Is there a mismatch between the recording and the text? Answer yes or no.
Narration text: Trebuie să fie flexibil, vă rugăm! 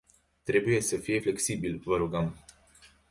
no